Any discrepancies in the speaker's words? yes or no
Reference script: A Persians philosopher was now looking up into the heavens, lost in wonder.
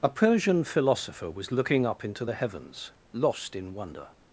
yes